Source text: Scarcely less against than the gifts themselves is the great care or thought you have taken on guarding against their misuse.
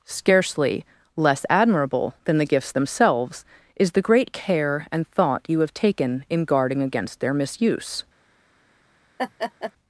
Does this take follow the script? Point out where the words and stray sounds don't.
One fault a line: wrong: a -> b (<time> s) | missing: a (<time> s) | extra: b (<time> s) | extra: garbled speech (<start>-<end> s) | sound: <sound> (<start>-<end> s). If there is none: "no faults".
wrong: against -> admirable (1.5 s)
wrong: or -> and (4.9 s)
wrong: on -> in (6.3 s)
sound: laugh (9.2-9.7 s)